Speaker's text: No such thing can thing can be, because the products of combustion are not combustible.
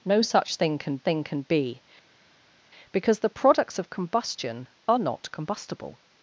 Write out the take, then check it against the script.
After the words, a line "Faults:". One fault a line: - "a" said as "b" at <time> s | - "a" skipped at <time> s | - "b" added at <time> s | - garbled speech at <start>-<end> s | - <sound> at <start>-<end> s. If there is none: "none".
No such thing can thing can be, because the products of combustion are not combustible.
Faults:
none